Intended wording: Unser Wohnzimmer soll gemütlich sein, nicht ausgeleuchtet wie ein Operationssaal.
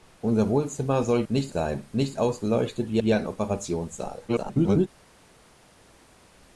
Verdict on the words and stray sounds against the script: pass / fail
fail